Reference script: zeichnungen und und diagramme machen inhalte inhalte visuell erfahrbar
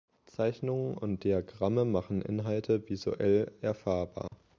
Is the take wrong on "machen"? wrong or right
right